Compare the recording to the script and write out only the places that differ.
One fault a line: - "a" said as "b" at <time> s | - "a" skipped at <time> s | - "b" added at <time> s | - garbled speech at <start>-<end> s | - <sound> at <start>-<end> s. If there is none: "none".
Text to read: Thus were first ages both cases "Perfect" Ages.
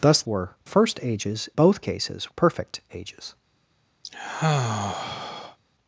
- sigh at 4.0-5.6 s